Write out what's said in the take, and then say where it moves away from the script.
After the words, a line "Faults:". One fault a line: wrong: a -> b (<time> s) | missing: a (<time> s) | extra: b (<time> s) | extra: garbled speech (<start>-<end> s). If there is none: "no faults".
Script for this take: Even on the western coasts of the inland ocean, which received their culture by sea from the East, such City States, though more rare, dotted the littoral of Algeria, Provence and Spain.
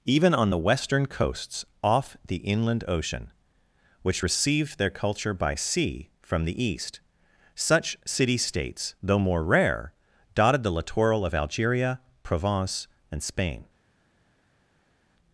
Even on the western coasts off the inland ocean, which received their culture by sea from the East, such City States, though more rare, dotted the littoral of Algeria, Provence and Spain.
Faults:
wrong: of -> off (1.8 s)